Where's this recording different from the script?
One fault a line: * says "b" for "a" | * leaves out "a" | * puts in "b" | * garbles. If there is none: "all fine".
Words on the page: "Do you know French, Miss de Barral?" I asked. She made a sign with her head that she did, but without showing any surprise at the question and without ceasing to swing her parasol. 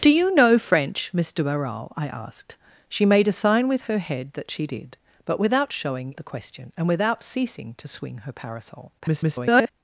* leaves out "any surprise at"
* garbles